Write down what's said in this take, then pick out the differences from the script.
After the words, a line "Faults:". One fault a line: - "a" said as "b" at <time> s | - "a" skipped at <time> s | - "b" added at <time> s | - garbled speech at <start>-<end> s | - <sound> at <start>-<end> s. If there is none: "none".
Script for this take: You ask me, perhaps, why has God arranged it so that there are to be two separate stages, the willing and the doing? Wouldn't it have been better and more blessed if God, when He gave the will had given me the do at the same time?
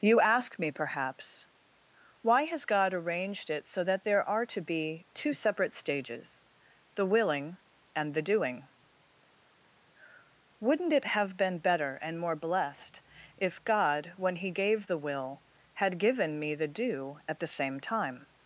You ask me, perhaps, why has God arranged it so that there are to be two separate stages, the willing and the doing? Wouldn't it have been better and more blessed if God, when He gave the will had given me the do at the same time?
Faults:
none